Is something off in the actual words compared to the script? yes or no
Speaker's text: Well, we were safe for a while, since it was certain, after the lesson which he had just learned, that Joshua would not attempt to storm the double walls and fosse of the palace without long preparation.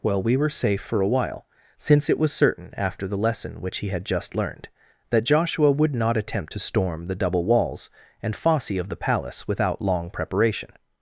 no